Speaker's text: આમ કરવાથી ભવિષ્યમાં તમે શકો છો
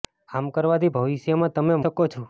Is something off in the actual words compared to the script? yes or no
no